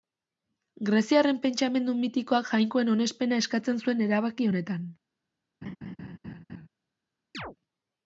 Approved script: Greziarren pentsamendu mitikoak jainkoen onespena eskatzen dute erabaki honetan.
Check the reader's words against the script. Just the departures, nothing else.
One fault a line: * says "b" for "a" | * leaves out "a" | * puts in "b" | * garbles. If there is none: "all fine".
* says "zuen" for "dute"